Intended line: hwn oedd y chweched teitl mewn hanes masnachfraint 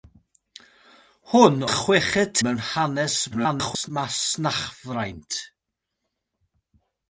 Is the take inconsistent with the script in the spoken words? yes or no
yes